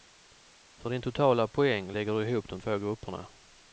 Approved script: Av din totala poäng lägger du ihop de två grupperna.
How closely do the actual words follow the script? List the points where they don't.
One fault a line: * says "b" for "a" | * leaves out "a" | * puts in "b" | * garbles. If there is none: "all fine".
* says "För" for "Av"